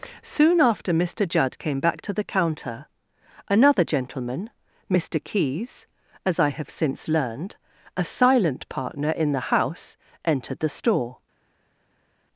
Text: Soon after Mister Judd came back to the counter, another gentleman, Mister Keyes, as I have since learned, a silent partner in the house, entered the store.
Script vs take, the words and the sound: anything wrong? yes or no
no